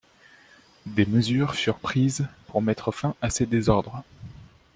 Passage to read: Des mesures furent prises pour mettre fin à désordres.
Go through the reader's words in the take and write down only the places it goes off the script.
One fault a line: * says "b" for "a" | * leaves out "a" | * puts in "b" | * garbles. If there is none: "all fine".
* puts in "ces"